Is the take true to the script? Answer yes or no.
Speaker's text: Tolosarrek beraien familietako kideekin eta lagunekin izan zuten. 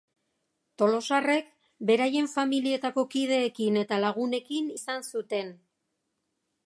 yes